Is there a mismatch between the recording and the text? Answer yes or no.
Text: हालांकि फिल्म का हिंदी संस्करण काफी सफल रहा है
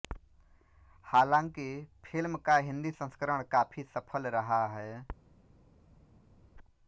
no